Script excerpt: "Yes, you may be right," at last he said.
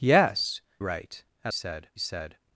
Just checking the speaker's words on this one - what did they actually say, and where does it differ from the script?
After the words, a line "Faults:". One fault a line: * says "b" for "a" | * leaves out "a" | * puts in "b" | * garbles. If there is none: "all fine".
"Yes, right," at said he said.
Faults:
* leaves out "you may be"
* says "said" for "last"